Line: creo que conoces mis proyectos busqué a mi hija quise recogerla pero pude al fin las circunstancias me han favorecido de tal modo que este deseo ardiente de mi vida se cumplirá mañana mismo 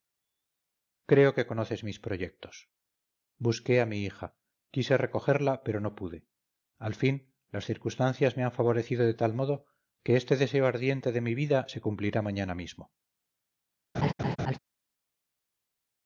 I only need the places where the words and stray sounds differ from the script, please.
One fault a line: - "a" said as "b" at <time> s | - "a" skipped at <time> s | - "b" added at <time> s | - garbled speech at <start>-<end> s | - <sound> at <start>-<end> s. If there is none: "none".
- "no" added at 5.8 s
- laugh at 13.9-14.6 s